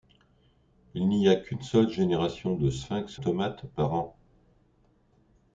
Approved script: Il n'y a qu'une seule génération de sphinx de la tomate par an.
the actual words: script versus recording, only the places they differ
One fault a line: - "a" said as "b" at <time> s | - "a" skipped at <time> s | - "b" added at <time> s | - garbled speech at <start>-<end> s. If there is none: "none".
- "de la" skipped at 3.2 s